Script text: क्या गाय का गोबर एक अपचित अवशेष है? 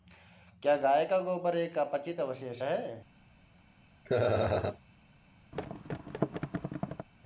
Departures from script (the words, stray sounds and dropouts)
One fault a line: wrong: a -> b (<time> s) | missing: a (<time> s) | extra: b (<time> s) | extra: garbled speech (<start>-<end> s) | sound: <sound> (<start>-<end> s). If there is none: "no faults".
sound: laugh (4.0-4.8 s)
sound: thud (5.5-7.1 s)